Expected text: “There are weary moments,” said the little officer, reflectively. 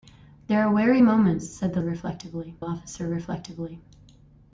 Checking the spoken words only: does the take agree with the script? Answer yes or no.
no